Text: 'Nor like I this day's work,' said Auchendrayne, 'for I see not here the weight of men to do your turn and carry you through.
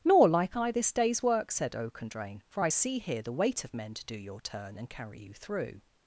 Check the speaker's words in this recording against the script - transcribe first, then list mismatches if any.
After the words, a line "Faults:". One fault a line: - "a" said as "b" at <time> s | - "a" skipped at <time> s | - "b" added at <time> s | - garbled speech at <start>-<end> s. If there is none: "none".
'Nor like I this day's work,' said Auchendrayne, 'for I see here the weight of men to do your turn and carry you through.
Faults:
- "not" skipped at 3.0 s